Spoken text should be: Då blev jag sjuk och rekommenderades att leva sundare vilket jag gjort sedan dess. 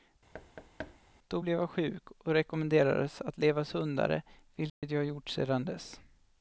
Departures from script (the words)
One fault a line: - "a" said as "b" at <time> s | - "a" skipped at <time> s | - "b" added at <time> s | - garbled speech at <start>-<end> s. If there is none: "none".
none